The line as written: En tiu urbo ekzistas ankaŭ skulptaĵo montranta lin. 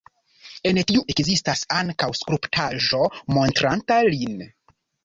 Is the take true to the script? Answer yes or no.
no